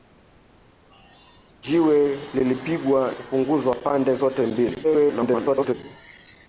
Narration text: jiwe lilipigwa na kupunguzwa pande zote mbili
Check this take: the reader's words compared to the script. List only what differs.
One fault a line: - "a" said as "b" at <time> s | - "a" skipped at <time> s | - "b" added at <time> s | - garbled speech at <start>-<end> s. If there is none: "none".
- "na" skipped at 3.1 s
- garbled speech at 4.8-5.7 s